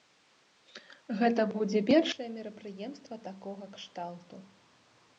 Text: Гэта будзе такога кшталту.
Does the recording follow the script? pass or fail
fail